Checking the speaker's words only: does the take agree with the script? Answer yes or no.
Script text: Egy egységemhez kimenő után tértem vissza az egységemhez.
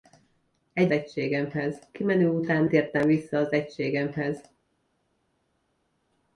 yes